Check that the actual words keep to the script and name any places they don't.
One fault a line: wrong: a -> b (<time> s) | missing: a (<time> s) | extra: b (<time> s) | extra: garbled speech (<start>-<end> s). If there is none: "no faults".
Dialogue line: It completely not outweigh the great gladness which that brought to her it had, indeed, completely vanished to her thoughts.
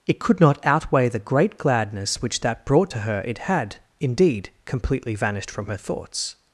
wrong: completely -> could (0.2 s)
wrong: to -> from (5.5 s)